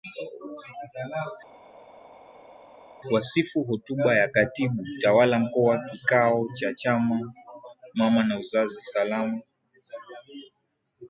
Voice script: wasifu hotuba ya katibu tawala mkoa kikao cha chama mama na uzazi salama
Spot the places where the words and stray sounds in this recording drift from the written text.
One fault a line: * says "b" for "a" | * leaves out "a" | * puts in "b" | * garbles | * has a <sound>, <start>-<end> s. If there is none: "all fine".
all fine